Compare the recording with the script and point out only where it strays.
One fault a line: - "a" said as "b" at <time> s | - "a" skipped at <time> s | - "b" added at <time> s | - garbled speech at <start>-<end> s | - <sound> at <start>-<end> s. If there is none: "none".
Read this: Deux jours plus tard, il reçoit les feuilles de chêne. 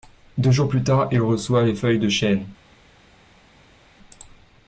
none